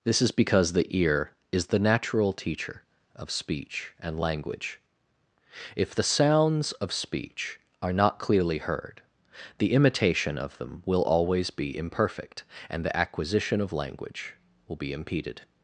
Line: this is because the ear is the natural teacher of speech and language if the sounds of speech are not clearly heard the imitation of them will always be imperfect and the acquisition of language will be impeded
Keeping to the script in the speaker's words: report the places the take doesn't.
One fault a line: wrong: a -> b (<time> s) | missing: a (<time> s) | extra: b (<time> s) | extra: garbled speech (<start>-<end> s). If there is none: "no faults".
no faults